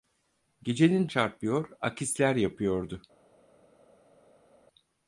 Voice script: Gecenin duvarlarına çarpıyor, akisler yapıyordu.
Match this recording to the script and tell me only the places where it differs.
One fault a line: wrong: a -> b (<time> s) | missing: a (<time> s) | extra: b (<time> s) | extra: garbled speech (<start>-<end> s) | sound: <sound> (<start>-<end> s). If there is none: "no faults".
missing: duvarlarına (1.1 s)